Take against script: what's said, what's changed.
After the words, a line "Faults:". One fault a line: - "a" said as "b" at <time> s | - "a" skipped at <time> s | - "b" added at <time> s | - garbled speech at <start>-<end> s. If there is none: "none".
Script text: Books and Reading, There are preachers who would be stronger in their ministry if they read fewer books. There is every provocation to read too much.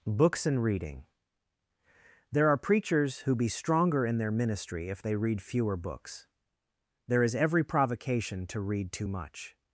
Books and Reading, There are preachers who be stronger in their ministry if they read fewer books. There is every provocation to read too much.
Faults:
- "would" skipped at 3.4 s